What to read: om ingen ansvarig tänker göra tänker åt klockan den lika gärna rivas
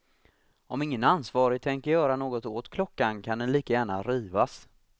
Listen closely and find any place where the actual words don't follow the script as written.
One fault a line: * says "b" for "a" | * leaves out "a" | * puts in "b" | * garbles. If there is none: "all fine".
* says "något" for "tänker"
* puts in "kan"